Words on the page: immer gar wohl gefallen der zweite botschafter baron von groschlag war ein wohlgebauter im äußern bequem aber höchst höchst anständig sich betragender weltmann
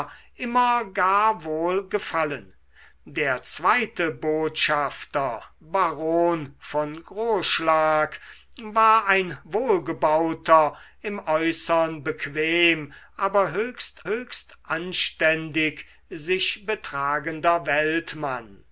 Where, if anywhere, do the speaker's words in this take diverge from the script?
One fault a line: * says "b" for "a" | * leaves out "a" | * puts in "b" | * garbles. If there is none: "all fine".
all fine